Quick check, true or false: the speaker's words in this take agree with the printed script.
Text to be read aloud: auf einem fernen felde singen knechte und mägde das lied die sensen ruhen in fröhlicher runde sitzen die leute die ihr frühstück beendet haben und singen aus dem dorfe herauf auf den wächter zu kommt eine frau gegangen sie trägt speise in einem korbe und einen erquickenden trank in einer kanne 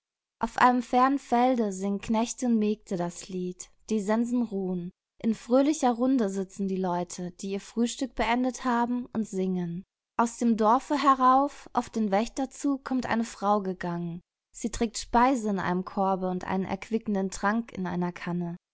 true